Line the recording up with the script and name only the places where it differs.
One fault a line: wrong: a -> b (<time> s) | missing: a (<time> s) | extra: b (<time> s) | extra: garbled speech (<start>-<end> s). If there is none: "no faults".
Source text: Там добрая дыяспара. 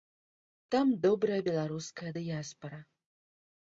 extra: беларуская (1.5 s)